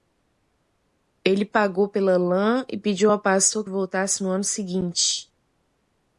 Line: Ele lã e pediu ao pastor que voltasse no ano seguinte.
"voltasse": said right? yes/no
yes